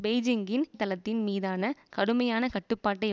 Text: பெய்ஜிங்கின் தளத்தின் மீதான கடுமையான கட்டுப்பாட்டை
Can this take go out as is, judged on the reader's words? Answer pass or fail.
pass